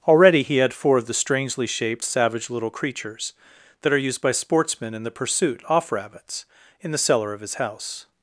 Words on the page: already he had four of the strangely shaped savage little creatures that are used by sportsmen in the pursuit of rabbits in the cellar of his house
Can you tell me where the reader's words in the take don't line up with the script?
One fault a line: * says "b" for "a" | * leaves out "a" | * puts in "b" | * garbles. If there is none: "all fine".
* says "off" for "of"